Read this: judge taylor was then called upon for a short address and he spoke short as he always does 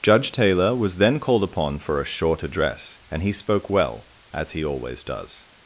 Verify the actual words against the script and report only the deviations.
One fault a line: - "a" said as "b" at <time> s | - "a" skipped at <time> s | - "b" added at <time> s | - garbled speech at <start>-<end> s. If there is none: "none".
- "short" said as "well" at 3.7 s